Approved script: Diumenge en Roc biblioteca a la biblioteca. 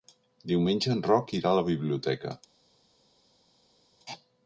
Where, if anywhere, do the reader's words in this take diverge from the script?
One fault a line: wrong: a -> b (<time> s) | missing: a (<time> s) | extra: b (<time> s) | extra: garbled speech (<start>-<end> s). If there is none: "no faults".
wrong: biblioteca -> irà (1.4 s)